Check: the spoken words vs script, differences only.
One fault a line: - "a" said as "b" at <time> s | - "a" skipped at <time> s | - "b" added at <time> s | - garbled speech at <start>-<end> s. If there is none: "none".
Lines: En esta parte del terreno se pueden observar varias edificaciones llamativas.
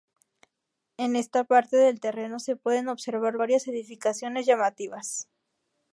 none